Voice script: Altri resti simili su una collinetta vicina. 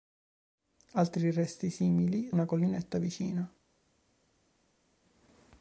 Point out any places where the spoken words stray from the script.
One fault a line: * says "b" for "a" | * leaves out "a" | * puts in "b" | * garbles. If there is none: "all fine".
* leaves out "su"